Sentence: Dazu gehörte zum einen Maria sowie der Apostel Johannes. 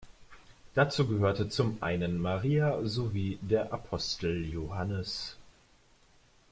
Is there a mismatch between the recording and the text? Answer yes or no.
no